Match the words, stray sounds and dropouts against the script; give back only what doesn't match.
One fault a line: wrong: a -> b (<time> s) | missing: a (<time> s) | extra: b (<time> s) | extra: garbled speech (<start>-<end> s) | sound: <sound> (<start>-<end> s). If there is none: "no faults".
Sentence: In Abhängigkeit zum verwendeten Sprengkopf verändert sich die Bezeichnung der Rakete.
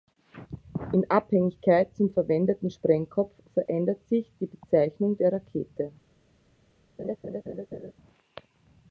sound: dropout (3.7-3.7 s)
sound: laugh (7.0-7.9 s)